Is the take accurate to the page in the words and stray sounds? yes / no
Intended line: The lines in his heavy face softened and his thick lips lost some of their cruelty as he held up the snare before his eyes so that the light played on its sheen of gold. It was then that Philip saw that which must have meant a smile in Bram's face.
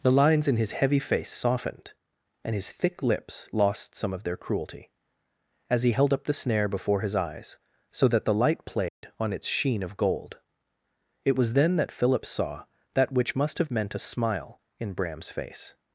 no